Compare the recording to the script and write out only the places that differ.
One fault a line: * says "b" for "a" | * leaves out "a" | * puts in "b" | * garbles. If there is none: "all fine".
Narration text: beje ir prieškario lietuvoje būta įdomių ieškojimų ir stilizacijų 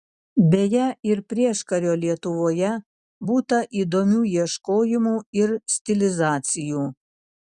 all fine